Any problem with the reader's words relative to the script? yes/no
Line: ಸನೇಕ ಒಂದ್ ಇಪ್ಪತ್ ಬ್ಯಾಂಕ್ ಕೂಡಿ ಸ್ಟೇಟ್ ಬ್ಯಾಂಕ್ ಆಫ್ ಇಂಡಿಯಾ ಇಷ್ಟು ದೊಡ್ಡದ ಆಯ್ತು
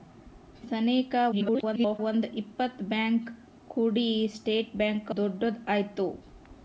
yes